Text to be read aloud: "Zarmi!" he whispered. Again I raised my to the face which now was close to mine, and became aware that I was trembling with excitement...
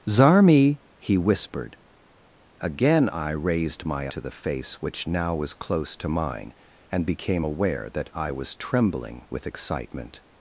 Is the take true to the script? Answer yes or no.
yes